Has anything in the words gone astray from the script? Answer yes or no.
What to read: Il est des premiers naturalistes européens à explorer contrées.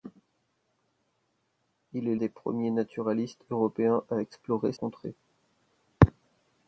no